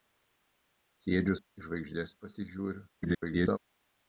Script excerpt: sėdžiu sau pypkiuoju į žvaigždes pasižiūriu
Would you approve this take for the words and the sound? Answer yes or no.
no